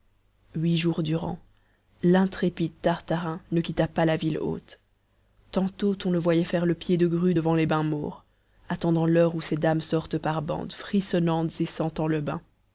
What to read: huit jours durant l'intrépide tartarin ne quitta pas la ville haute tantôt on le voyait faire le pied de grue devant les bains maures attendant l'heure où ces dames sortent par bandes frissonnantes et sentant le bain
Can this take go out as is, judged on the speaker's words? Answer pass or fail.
pass